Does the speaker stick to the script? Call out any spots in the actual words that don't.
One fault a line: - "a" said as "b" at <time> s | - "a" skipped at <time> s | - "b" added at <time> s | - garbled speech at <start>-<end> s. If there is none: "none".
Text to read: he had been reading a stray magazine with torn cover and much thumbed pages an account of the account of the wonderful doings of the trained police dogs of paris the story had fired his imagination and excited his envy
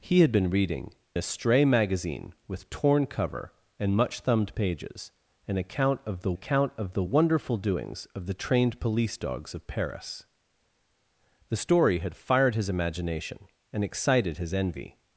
none